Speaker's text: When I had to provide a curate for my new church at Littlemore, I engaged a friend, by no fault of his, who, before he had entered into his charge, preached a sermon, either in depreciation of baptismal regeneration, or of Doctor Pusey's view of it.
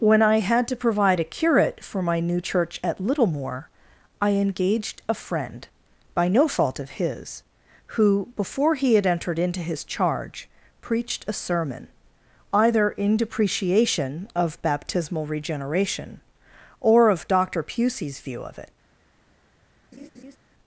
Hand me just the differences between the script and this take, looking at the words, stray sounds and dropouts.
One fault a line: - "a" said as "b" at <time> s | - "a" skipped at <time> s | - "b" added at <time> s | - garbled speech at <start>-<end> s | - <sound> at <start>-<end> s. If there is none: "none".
- laugh at 19.9-20.4 s